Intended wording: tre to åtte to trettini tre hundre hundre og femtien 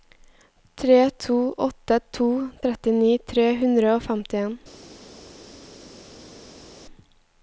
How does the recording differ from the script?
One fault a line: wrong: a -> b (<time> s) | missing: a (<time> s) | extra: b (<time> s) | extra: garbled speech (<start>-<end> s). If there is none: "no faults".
missing: hundre (3.9 s)